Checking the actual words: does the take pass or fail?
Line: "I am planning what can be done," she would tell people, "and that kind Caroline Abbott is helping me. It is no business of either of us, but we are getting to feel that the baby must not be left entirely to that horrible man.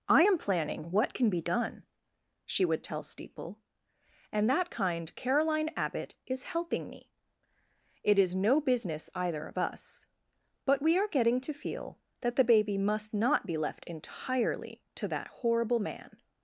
fail